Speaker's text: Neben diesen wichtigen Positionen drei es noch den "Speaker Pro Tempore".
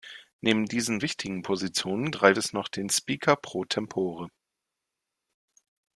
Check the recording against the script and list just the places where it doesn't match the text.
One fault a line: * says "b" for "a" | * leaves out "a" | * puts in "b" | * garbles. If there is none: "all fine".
all fine